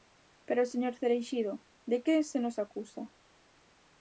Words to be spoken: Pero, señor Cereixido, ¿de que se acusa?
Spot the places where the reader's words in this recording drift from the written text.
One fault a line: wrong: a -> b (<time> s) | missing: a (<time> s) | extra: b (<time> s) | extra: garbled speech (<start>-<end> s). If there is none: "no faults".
extra: nos (2.4 s)